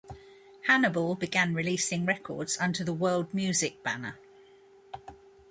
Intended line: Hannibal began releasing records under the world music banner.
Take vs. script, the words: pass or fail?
pass